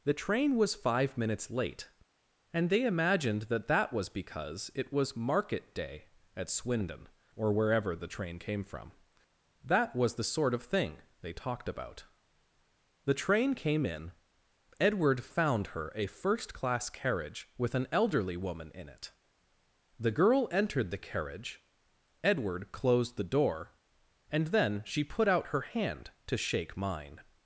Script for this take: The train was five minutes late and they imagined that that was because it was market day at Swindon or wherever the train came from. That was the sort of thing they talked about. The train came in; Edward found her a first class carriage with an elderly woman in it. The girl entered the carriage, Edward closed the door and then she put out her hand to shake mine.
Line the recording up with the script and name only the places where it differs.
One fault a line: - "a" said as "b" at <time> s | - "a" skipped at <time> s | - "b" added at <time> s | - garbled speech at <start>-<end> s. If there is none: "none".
none